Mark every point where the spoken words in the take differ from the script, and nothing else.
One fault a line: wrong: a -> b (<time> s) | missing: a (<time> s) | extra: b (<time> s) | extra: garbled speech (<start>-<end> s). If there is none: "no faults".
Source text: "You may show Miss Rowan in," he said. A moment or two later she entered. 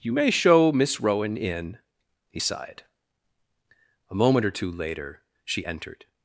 wrong: said -> sighed (2.4 s)